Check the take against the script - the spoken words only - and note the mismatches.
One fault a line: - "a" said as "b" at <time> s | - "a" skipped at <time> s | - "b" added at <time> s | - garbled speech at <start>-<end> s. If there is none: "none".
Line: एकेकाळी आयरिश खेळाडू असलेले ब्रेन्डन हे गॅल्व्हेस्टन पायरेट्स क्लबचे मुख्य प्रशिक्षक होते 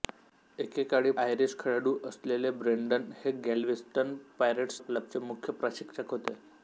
none